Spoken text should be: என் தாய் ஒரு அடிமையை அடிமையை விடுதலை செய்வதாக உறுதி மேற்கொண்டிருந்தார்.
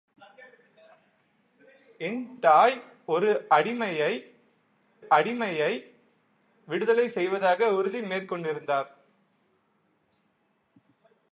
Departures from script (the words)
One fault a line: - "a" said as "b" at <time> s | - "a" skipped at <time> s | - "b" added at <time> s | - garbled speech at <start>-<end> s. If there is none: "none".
none